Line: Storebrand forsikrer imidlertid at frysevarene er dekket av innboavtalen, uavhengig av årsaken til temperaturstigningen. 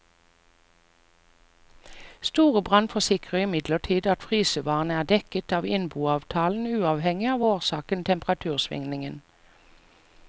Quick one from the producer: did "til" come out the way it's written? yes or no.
no